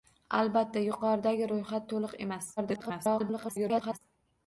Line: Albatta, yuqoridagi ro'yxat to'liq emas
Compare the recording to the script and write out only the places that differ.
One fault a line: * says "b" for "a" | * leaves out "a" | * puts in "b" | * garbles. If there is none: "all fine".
* garbles